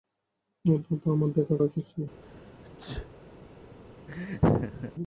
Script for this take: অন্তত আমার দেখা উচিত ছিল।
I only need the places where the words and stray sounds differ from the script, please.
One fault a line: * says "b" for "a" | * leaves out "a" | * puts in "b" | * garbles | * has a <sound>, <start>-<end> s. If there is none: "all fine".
* has a sneeze, 2.2-3.1 s
* has a laugh, 4.1-4.9 s